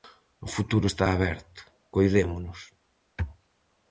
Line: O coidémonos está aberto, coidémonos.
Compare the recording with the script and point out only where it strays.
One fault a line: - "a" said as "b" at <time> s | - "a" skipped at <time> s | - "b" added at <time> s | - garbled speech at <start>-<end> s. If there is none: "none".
- "coidémonos" said as "futuro" at 0.6 s